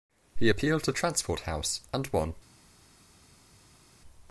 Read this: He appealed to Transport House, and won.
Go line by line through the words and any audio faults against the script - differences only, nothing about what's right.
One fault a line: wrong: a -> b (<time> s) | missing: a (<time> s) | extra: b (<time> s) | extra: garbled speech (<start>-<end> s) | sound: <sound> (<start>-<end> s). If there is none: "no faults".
no faults